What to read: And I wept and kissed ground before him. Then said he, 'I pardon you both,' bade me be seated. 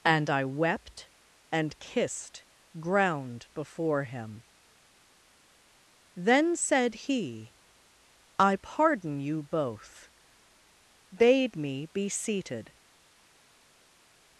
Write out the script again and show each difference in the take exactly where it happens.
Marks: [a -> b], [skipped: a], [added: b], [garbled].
And I wept and kissed ground before him. Then said he, 'I pardon you both,' bade me be seated.